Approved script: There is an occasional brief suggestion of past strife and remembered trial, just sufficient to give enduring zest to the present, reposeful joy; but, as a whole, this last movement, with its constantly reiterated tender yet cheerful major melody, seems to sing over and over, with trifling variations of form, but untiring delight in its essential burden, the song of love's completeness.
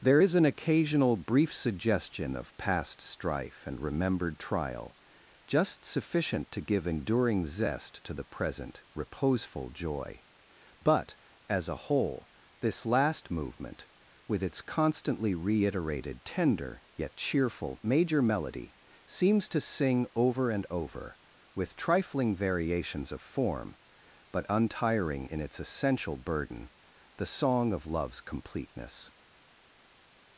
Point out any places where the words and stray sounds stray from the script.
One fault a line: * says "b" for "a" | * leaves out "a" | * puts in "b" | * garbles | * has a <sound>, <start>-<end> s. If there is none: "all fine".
* leaves out "delight"